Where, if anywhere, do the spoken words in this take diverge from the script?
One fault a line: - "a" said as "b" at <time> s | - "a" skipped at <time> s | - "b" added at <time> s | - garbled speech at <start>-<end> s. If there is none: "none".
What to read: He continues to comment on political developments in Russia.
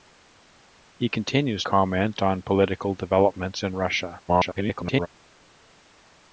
- "to" skipped at 1.6 s
- garbled speech at 4.3-5.1 s